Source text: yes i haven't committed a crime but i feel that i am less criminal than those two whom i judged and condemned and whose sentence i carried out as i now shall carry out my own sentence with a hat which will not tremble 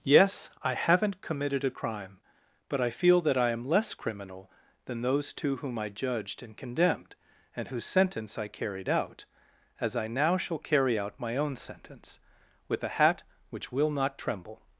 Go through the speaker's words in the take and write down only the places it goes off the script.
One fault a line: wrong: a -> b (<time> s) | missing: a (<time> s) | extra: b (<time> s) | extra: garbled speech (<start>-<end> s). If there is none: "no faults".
no faults